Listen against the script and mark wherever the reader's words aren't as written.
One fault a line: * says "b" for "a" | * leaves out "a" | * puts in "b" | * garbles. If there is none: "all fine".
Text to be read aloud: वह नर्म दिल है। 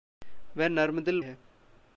all fine